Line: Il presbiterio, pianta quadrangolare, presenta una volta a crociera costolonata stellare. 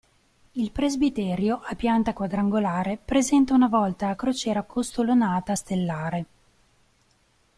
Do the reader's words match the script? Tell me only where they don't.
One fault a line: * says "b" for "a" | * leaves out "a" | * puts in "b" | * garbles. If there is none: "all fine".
* puts in "a"